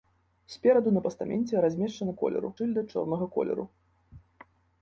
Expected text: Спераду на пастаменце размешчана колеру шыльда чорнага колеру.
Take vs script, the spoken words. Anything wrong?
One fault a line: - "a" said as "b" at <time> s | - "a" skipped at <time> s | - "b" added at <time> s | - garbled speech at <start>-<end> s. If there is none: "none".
none